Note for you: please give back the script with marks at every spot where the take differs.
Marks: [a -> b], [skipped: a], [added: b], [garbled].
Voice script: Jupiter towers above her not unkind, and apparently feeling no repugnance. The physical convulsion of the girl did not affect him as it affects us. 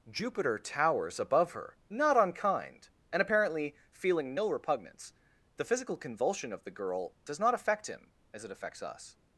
Jupiter towers above her not unkind, and apparently feeling no repugnance. The physical convulsion of the girl [did -> does] not affect him as it affects us.